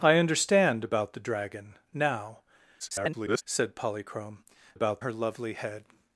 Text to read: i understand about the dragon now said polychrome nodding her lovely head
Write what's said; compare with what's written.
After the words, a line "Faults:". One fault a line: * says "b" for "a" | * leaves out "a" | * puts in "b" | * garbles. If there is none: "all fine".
i understand about the dragon now [garbled] said polychrome about her lovely head
Faults:
* garbles
* says "about" for "nodding"